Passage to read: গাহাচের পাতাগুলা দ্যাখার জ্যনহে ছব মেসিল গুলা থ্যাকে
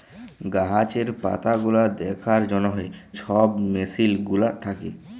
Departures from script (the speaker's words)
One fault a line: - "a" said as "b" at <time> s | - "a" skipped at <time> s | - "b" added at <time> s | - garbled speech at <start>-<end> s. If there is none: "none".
none